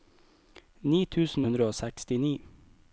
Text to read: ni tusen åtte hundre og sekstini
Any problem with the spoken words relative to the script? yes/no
yes